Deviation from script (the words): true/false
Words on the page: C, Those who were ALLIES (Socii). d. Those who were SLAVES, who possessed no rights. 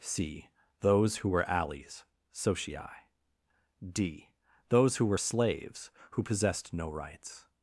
false